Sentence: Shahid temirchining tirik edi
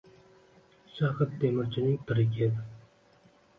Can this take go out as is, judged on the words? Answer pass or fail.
pass